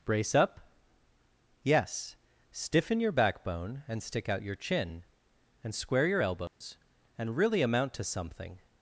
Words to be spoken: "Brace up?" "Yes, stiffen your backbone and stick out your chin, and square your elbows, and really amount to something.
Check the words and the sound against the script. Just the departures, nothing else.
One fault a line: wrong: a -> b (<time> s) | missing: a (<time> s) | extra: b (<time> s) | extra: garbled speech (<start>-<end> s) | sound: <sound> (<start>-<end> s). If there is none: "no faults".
sound: dropout (6.5-6.6 s)